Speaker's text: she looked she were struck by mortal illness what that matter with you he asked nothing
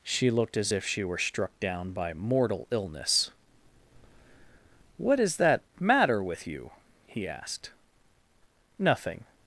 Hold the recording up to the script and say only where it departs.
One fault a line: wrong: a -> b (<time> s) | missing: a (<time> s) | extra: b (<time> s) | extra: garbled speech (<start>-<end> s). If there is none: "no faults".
extra: as if (0.6 s)
extra: down (1.6 s)
extra: is (5.2 s)